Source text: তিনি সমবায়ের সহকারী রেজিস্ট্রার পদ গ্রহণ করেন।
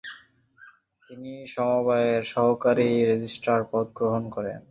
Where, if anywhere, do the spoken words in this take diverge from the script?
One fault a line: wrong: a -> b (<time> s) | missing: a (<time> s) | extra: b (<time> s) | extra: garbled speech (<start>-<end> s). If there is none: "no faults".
no faults